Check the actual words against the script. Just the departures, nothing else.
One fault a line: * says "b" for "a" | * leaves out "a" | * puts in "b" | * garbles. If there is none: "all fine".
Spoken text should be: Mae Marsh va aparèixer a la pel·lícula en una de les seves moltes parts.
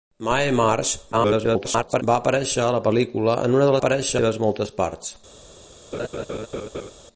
* garbles
* says "aparèixer" for "les"